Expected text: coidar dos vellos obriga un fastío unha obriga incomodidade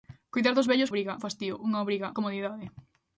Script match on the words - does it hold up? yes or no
yes